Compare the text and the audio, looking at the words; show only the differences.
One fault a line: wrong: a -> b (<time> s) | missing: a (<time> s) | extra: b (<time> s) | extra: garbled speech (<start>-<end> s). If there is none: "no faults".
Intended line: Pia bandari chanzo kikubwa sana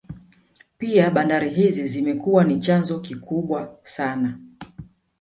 extra: hizi zimekuwa ni (1.5 s)